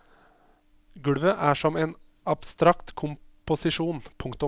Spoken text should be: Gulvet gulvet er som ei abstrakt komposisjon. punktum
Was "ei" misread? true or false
true